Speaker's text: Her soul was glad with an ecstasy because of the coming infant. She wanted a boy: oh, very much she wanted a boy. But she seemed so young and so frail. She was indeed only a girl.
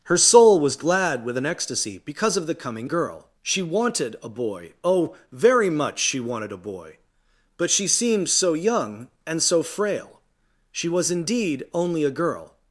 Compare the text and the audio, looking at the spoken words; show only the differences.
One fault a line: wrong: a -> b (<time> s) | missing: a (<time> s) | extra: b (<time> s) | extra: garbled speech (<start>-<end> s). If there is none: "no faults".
wrong: infant -> girl (2.8 s)